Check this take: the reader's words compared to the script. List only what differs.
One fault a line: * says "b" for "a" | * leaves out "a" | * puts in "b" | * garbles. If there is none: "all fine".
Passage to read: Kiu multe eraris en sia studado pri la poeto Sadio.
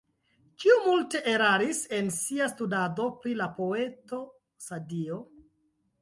all fine